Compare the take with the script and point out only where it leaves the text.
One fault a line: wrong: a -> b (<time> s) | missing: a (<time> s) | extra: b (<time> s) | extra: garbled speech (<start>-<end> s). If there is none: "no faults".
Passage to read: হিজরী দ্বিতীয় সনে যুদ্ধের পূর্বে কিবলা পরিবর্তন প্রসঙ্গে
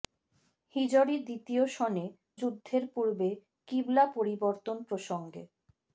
no faults